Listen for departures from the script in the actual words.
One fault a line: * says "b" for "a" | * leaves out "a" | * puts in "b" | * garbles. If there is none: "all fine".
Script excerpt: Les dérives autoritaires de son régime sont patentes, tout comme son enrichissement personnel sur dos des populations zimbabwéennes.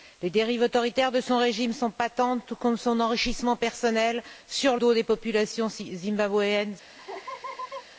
all fine